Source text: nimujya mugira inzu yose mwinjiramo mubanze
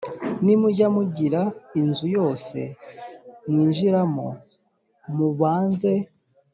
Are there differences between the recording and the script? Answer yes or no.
no